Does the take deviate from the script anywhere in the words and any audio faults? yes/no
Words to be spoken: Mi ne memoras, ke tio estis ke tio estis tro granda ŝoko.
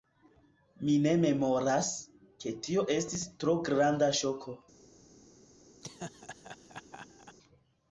yes